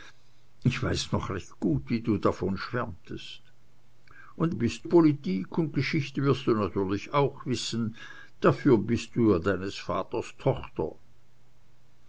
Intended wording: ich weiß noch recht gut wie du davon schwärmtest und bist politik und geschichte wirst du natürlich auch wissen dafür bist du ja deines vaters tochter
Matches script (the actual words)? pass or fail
pass